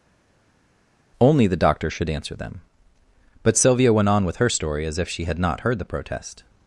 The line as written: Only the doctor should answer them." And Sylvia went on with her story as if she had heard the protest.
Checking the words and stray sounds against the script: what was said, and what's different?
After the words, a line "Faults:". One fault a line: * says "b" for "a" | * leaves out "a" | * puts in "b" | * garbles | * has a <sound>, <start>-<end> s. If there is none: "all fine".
Only the doctor should answer them." But Sylvia went on with her story as if she had not heard the protest.
Faults:
* says "But" for "And"
* puts in "not"